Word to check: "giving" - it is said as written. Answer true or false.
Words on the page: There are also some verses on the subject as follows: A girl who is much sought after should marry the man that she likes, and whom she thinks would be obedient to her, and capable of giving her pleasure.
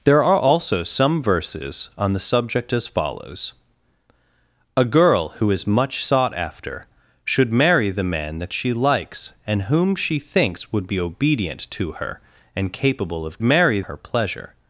false